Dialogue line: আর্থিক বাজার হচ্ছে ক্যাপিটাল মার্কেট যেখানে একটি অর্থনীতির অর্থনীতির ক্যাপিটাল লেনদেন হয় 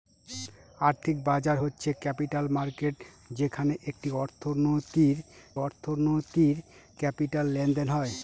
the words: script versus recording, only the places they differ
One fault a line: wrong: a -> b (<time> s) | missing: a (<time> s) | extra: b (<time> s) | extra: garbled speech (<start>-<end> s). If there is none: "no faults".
no faults